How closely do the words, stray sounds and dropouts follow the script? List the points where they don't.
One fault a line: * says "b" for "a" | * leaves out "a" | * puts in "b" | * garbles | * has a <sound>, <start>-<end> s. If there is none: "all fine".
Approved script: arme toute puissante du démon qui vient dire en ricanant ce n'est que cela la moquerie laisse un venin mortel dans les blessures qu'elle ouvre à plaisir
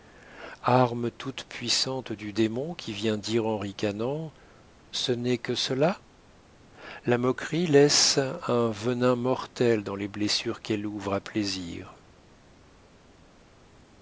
all fine